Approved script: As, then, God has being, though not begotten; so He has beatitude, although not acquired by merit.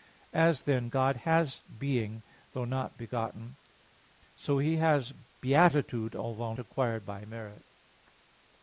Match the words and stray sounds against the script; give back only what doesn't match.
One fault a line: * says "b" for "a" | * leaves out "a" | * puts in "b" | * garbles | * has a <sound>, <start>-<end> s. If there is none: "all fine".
* leaves out "not"